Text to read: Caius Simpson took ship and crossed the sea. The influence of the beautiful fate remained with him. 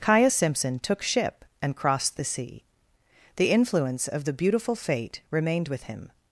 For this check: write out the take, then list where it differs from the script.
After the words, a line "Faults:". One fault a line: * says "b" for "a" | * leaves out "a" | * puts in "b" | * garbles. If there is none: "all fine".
Caius Simpson took ship and crossed the sea. The influence of the beautiful fate remained with him.
Faults:
all fine